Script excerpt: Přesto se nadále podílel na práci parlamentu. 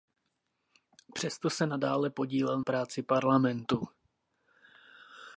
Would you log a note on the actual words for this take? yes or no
yes